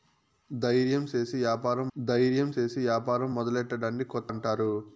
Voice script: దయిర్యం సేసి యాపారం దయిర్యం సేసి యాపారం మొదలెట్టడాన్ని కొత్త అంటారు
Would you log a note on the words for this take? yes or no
no